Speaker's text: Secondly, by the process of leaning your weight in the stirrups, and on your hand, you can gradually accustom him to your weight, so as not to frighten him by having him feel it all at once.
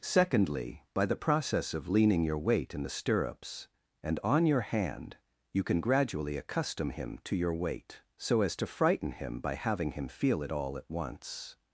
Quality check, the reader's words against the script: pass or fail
fail